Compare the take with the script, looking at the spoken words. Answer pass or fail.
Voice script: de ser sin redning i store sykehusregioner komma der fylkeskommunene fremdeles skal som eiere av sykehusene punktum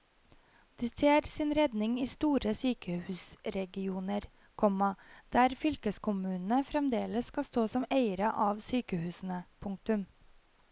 fail